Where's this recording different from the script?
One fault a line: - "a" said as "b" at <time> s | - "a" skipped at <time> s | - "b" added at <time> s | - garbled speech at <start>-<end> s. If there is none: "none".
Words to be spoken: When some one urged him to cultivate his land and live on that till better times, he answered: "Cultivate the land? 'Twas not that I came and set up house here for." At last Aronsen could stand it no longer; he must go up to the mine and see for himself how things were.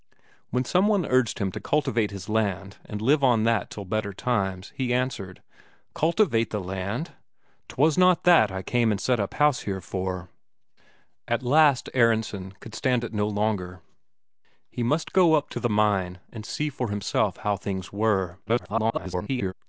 - garbled speech at 18.5-19.5 s